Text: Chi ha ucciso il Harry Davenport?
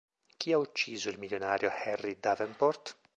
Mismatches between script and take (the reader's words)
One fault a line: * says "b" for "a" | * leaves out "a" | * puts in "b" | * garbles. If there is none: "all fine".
* puts in "milionario"